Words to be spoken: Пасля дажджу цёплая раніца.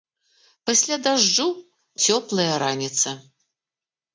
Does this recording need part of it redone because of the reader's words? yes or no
no